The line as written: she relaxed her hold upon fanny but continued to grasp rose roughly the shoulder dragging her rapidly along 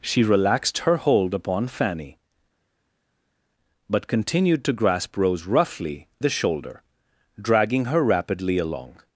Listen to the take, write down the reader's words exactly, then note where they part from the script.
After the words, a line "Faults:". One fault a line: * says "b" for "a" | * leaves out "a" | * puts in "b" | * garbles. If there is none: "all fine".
she relaxed her hold upon fanny but continued to grasp rose roughly the shoulder dragging her rapidly along
Faults:
all fine